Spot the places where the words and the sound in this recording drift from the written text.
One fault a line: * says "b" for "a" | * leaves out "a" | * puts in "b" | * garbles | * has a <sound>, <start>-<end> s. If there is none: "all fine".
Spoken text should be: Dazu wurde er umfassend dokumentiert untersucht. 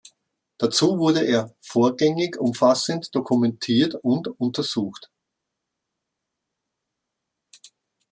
* puts in "vorgängig"
* puts in "und"